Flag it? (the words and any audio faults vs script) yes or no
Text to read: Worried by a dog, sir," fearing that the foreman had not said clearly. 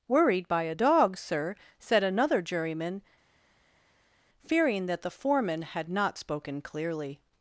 yes